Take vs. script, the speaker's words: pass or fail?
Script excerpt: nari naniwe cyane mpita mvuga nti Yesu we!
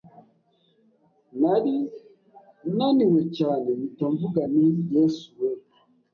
pass